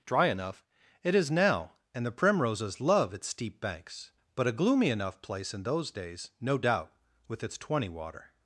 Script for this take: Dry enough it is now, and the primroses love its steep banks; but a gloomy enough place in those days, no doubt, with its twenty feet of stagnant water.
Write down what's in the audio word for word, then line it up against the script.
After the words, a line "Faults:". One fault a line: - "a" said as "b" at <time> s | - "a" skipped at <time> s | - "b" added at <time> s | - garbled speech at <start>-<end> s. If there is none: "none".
Dry enough it is now, and the primroses love its steep banks; but a gloomy enough place in those days, no doubt, with its twenty water.
Faults:
- "feet of stagnant" skipped at 7.9 s